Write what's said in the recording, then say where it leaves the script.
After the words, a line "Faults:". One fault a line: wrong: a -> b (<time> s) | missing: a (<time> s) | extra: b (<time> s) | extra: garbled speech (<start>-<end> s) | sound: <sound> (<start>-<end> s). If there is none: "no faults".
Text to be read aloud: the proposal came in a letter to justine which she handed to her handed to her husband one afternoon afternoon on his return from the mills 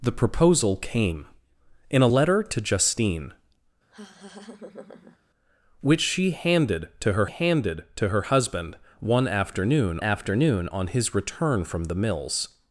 the proposal came in a letter to justine which she handed to her handed to her husband one afternoon afternoon on his return from the mills
Faults:
sound: laugh (3.9-5.2 s)